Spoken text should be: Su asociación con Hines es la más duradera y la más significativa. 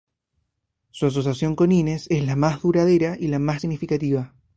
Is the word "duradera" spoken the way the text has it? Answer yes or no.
yes